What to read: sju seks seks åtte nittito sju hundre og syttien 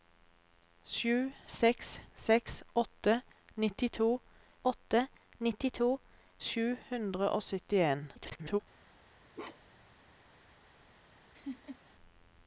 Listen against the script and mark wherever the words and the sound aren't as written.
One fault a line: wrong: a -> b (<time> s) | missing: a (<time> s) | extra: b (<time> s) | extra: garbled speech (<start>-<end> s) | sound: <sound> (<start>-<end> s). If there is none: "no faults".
extra: åtte nittito (4.7 s)
extra: garbled speech (8.2-8.6 s)
sound: bark (9.3-9.9 s)
sound: laugh (11.3-11.8 s)